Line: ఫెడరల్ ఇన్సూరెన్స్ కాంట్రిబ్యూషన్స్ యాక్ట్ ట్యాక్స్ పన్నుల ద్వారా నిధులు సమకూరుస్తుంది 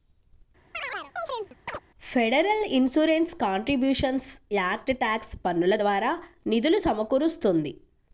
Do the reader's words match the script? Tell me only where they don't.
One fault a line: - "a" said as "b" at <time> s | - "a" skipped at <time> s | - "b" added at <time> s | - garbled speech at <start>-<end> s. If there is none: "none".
none